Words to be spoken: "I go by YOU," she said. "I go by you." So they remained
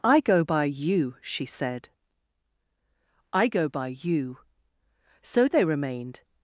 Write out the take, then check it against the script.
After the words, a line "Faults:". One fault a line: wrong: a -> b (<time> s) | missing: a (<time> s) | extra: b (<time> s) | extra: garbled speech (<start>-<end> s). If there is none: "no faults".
"I go by YOU," she said. "I go by you." So they remained
Faults:
no faults